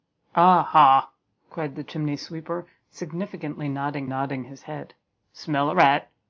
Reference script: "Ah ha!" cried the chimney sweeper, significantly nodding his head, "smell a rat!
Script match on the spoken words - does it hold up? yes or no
no